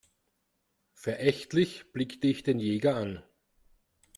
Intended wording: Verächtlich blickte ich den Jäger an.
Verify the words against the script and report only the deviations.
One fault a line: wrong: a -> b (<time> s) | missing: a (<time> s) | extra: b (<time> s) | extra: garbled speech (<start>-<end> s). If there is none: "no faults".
no faults